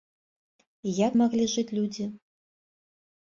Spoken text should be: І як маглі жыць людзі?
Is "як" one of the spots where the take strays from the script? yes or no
no